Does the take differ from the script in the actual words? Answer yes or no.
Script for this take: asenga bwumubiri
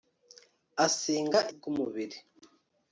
no